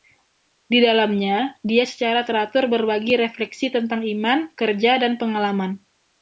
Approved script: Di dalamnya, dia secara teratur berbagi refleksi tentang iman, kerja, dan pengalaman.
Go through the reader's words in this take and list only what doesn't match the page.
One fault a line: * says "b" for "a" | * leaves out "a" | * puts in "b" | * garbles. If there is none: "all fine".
all fine